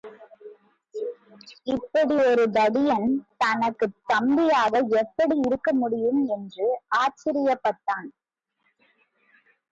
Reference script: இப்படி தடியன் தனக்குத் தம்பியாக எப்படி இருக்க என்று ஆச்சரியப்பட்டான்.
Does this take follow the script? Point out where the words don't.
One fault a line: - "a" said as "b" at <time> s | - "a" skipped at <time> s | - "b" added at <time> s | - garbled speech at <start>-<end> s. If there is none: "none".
- "ஒரு" added at 2.2 s
- "முடியும்" added at 5.7 s